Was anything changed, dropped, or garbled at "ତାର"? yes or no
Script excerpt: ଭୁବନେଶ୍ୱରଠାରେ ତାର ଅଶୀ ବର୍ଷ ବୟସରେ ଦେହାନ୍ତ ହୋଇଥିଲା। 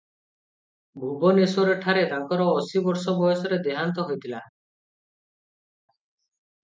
yes